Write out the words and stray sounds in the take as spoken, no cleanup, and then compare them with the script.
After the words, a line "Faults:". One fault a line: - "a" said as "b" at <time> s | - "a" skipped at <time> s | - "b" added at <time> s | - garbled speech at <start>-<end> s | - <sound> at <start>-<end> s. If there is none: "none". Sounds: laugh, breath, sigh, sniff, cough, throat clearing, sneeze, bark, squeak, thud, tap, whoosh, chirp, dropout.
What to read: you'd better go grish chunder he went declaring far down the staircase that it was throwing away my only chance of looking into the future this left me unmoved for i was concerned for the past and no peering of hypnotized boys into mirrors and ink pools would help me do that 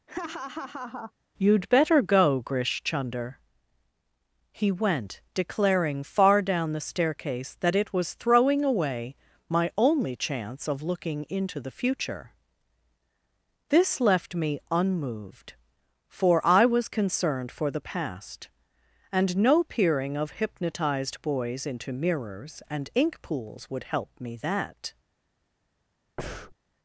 you'd better go grish chunder he went declaring far down the staircase that it was throwing away my only chance of looking into the future this left me unmoved for i was concerned for the past and no peering of hypnotized boys into mirrors and ink pools would help me that
Faults:
- laugh at 0.1-1.1 s
- "do" skipped at 24.4 s
- breath at 26.2-26.6 s